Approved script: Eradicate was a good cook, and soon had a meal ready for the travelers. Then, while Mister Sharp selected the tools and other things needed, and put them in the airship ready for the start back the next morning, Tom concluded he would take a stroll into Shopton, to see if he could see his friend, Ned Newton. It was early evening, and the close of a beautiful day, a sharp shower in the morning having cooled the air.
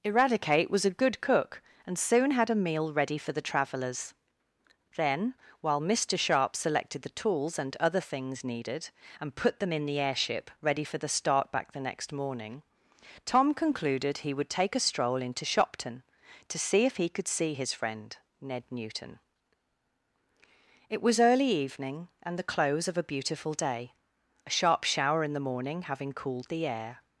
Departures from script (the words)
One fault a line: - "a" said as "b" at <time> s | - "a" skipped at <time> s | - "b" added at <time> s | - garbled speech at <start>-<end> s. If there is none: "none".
none